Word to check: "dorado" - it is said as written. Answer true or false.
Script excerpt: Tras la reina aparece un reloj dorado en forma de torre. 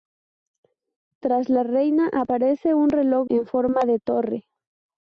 false